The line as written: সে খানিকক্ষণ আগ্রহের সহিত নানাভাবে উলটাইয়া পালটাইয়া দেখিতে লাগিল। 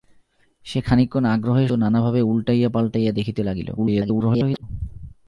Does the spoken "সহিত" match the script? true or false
false